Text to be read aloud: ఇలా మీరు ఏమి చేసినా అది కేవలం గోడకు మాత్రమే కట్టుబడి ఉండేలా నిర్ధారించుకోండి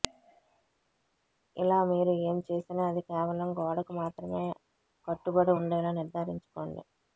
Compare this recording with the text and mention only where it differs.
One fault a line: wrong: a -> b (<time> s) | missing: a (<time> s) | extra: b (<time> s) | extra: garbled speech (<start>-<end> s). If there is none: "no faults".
no faults